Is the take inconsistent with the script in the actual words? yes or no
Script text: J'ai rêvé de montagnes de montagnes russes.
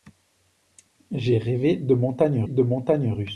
no